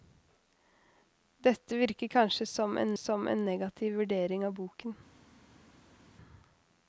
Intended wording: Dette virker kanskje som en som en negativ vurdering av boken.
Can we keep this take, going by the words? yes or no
yes